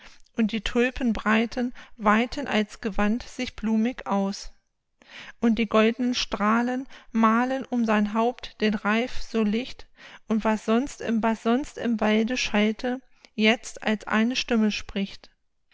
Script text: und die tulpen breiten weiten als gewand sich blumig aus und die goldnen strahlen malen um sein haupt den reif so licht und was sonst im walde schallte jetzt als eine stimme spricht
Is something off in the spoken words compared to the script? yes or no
yes